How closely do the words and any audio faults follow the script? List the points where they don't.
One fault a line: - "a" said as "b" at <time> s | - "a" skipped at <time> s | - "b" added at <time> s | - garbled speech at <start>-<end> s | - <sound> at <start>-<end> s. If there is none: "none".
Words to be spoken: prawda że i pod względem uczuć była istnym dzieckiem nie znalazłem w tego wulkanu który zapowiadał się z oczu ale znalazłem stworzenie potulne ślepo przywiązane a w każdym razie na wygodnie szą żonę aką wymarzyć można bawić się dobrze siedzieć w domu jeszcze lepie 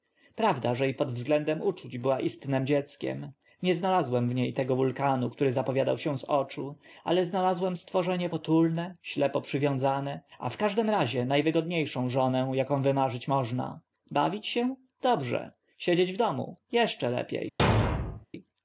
- "nie" added at 4.3 s
- thud at 17.6-18.3 s